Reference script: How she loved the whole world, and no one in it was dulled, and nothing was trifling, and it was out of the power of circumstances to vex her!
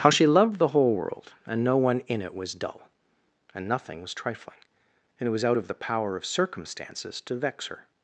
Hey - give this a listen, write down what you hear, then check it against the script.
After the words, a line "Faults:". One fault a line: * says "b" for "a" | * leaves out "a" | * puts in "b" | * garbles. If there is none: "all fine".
How she loved the whole world, and no one in it was dull, and nothing was trifling, and it was out of the power of circumstances to vex her!
Faults:
* says "dull" for "dulled"